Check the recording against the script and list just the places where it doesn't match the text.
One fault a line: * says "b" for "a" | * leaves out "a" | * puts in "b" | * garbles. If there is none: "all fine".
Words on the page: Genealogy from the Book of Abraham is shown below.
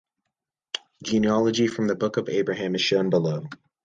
all fine